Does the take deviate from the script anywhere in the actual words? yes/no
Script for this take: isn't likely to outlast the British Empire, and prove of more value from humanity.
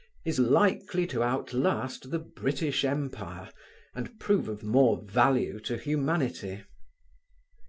yes